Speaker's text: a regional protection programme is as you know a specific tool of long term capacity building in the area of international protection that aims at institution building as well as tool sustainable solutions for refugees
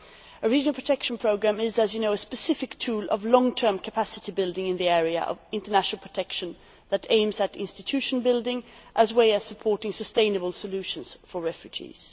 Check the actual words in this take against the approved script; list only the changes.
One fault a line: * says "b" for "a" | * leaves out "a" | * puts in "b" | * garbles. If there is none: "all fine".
* says "supporting" for "tool"